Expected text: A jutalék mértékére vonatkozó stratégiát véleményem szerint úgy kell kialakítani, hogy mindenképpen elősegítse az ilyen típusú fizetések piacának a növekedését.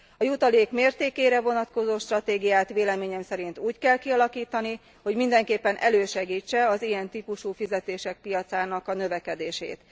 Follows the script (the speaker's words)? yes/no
yes